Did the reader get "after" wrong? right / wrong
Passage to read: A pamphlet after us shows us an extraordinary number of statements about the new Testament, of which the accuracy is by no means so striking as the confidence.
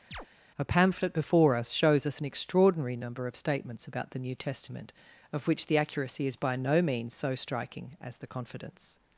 wrong